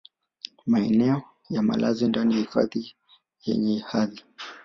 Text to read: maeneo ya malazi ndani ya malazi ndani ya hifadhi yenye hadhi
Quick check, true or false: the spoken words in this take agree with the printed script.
false